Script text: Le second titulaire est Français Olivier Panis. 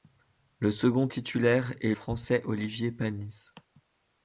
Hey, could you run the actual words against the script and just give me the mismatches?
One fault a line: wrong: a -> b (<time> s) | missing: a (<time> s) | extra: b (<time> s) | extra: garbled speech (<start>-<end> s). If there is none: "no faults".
no faults